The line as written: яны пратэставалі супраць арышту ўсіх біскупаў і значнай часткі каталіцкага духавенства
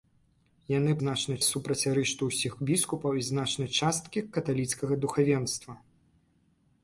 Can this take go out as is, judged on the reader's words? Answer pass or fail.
fail